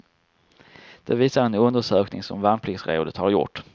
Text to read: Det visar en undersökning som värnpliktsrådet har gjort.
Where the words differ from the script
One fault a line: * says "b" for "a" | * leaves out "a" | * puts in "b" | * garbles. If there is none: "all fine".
all fine